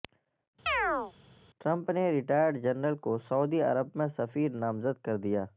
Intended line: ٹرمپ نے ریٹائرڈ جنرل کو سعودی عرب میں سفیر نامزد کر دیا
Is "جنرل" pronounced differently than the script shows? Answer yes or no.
no